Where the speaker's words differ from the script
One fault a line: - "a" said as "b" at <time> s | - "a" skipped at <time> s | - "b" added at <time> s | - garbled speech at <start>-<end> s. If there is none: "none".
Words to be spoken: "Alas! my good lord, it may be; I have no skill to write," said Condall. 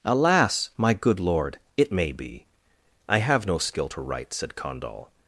none